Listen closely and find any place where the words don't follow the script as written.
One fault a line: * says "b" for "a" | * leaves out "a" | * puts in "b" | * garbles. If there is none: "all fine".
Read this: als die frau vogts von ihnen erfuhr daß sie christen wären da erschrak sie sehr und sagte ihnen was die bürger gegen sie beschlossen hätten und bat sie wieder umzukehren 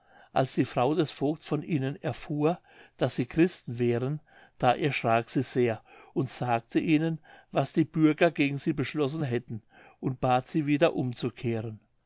* puts in "des"